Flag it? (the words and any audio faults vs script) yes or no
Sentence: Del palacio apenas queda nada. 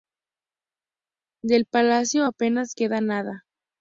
no